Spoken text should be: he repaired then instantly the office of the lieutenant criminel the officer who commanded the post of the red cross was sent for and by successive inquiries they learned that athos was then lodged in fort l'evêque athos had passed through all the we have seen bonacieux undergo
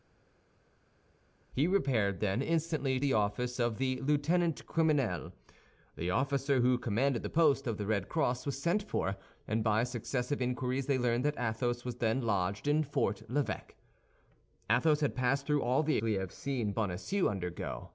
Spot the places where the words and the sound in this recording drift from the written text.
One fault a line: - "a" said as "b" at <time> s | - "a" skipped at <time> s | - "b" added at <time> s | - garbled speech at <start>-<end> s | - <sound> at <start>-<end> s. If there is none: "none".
none